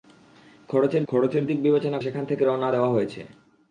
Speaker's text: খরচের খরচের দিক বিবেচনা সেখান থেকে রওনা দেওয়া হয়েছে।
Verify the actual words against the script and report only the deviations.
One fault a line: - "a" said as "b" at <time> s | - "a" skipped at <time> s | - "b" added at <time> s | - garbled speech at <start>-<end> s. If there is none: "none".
none